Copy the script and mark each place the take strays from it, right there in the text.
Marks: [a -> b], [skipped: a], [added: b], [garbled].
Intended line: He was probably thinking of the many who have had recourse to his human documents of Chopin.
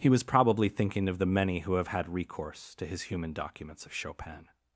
He was probably thinking of the many who have had recourse to his human documents of Chopin.